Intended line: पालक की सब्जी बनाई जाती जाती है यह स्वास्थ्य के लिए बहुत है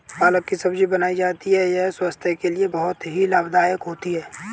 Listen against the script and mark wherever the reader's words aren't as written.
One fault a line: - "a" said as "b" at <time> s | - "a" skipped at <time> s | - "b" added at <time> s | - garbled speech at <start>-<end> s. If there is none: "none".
- "जाती" skipped at 1.5 s
- "ही लाभदायक होती" added at 3.1 s